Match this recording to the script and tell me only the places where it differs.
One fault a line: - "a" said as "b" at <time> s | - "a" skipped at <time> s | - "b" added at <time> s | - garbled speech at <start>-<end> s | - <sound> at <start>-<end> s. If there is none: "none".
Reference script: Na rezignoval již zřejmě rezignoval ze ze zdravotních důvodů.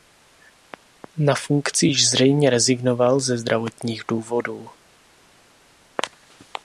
- "rezignoval" said as "funkci" at 1.4 s
- "ze" skipped at 3.4 s